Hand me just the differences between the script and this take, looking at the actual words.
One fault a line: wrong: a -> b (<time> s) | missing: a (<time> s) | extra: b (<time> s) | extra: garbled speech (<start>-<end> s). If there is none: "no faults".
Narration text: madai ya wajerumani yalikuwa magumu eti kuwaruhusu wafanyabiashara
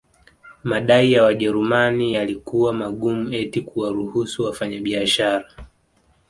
no faults